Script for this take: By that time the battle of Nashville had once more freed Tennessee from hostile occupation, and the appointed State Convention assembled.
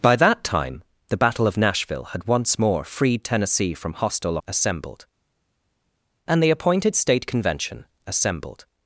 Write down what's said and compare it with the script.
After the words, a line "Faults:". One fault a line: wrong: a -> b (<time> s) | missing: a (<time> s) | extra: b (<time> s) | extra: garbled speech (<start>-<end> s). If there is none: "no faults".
By that time the battle of Nashville had once more freed Tennessee from hostile assembled, and the appointed State Convention assembled.
Faults:
wrong: occupation -> assembled (4.5 s)